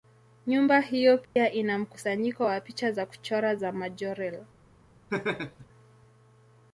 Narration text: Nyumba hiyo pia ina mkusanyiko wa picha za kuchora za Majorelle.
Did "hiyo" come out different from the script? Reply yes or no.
no